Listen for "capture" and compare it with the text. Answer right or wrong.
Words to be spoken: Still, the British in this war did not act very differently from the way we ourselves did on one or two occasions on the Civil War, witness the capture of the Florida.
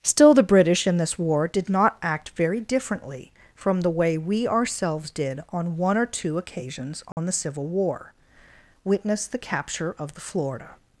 right